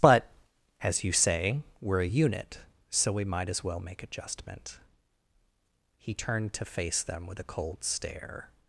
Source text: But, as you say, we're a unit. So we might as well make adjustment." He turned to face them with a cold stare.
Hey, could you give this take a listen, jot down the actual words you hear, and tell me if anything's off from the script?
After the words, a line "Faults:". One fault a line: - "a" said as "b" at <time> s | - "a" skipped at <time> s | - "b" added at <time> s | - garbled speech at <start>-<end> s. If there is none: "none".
But, as you say, we're a unit. So we might as well make adjustment." He turned to face them with a cold stare.
Faults:
none